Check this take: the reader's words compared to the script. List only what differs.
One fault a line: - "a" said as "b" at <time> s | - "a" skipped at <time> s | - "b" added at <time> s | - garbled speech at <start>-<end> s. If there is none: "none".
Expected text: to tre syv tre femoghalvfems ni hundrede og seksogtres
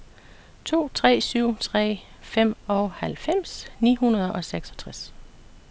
none